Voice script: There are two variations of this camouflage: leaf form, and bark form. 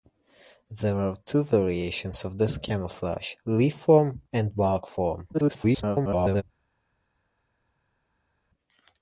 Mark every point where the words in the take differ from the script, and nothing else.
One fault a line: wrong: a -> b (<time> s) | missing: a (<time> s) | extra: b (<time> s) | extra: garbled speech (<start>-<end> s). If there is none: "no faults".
extra: garbled speech (5.3-6.4 s)